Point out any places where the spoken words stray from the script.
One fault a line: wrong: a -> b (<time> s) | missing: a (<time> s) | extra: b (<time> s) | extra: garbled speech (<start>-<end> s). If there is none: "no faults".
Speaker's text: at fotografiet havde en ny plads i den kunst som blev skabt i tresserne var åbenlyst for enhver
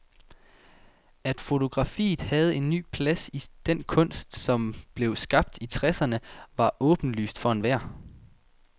no faults